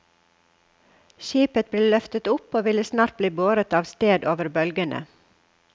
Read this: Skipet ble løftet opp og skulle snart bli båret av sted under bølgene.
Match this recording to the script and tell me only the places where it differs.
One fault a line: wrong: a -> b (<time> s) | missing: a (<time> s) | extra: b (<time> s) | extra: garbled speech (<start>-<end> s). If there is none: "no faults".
wrong: skulle -> ville (2.7 s)
wrong: under -> over (4.3 s)